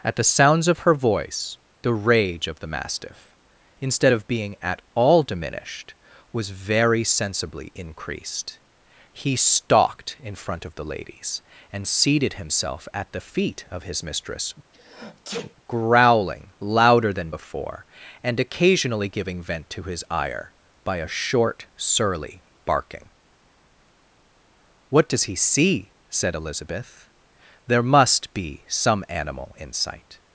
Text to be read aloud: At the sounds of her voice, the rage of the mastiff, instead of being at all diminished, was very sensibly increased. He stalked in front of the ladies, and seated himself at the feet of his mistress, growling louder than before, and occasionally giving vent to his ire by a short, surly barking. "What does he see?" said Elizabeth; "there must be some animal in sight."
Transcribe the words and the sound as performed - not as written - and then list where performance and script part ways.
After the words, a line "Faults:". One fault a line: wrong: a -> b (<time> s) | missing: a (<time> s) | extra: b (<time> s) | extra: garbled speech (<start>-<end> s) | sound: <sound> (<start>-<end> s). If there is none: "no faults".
At the sounds of her voice, the rage of the mastiff, instead of being at all diminished, was very sensibly increased. He stalked in front of the ladies, and seated himself at the feet of his mistress, growling louder than before, and occasionally giving vent to his ire by a short, surly barking. "What does he see?" said Elizabeth; "there must be some animal in sight."
Faults:
sound: sneeze (14.7-15.6 s)